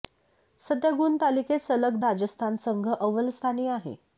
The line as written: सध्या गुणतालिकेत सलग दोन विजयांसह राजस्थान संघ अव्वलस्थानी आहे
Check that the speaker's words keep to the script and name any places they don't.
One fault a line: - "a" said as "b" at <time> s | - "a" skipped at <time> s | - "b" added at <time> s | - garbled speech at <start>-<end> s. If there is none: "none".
- "दोन विजयांसह" skipped at 2.0 s